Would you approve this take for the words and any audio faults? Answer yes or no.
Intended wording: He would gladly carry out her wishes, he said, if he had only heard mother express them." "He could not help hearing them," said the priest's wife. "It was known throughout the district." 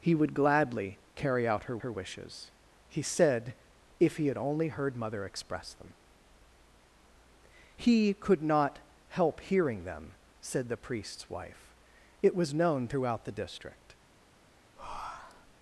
no